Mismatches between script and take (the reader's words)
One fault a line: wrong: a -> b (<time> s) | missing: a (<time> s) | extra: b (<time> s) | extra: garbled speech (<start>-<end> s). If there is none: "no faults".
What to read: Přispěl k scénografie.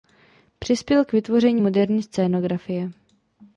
extra: vytvoření moderní (1.1 s)